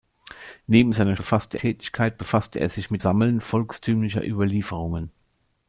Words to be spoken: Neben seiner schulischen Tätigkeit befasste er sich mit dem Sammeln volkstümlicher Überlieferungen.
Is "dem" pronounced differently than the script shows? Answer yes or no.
yes